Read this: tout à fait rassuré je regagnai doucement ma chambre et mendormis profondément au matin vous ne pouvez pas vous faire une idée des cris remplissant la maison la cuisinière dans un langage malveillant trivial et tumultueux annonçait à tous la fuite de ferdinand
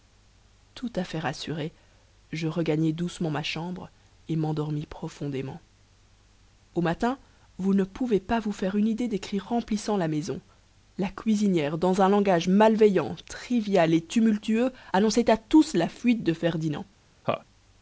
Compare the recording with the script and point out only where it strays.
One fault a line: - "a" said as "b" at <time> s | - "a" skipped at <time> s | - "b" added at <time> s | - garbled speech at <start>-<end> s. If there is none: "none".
none